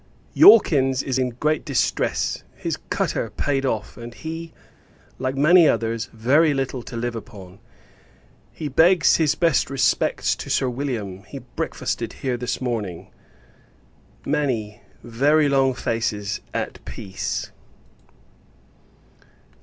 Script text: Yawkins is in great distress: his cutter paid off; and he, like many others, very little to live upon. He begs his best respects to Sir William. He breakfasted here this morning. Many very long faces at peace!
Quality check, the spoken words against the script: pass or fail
pass